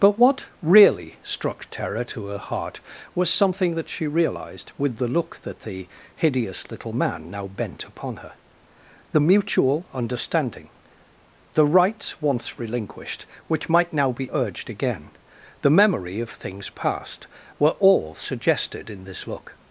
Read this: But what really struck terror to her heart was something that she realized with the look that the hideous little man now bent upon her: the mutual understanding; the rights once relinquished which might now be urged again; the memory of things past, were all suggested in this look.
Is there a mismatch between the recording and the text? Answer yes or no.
no